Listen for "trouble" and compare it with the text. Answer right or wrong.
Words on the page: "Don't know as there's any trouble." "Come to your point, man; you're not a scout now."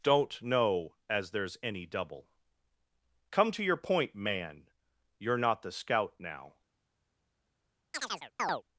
wrong